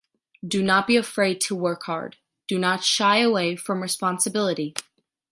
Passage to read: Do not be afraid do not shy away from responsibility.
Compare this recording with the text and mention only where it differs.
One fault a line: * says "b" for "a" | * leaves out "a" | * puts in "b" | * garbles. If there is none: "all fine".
* puts in "to work hard"